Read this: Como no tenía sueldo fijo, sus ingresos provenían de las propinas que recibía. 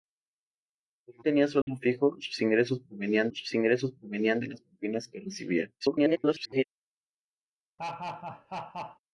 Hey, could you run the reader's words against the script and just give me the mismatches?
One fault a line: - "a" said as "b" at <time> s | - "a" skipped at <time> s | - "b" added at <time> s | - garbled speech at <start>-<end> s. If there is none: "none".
- "no" skipped at 1.2 s
- "sus ingresos provenían" added at 3.3 s
- garbled speech at 5.8-6.6 s